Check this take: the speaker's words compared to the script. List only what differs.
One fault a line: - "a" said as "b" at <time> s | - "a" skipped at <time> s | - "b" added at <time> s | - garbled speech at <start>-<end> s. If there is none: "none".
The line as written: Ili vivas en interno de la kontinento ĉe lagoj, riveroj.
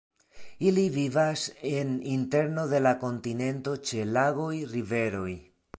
none